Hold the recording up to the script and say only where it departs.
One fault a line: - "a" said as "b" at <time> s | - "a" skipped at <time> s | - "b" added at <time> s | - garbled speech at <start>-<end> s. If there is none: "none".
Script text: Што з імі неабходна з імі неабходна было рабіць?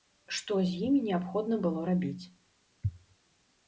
- "з імі неабходна" skipped at 1.6 s